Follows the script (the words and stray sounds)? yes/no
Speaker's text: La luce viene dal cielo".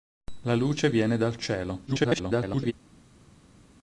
no